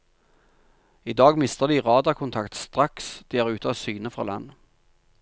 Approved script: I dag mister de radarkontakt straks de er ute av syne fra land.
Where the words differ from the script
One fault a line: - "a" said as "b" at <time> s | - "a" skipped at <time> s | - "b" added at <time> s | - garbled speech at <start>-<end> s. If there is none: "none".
none